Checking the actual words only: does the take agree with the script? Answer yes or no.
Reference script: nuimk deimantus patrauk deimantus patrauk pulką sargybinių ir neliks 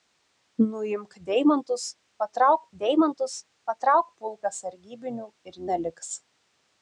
yes